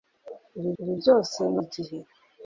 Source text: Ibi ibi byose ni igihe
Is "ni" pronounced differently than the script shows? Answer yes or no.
no